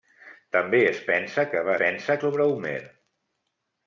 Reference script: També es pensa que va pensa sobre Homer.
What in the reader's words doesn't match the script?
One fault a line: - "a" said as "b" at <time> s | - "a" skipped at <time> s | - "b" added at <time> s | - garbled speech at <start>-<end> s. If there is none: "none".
none